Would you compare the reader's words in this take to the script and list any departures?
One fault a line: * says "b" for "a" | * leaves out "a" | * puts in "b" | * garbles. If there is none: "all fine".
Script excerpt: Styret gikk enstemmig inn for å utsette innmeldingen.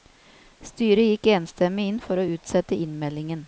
all fine